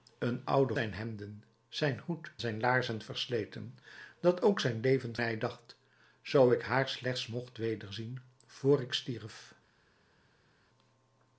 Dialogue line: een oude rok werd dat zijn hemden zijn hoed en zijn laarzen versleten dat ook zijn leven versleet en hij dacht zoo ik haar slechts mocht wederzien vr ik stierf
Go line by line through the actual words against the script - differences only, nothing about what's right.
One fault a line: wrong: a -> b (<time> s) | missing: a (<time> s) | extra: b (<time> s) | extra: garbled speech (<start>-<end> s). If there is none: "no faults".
missing: rok werd dat (0.7 s)
missing: en (2.3 s)
missing: versleet en (5.2 s)